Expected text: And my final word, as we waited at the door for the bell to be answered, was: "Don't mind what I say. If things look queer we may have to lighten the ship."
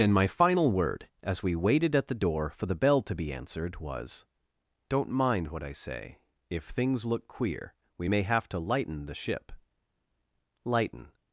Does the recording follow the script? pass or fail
fail